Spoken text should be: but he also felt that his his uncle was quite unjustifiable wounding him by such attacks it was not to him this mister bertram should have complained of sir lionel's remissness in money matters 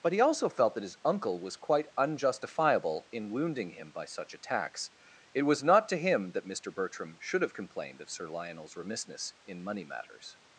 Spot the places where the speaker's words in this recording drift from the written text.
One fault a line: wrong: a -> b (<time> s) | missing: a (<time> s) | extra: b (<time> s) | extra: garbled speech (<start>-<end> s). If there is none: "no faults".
missing: his (1.0 s)
extra: in (3.1 s)
wrong: this -> that (6.3 s)